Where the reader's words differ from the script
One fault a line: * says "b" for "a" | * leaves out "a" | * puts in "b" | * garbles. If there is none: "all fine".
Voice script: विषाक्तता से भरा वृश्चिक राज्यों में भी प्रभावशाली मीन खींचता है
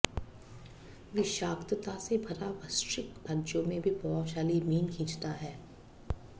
all fine